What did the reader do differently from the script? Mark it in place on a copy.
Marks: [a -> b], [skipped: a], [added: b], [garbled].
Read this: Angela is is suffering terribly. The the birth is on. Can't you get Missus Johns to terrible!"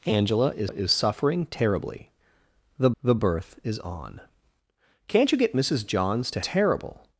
Angela is is suffering terribly. The the birth is on. Can't you get Missus Johns to terrible!"